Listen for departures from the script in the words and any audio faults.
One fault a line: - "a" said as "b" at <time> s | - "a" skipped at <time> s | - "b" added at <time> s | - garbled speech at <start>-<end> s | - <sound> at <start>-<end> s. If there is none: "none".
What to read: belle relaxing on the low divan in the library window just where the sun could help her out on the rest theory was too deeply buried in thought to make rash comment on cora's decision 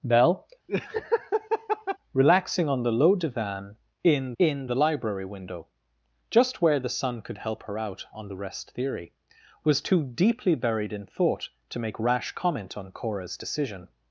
- laugh at 0.7-2.0 s
- "in" added at 4.4 s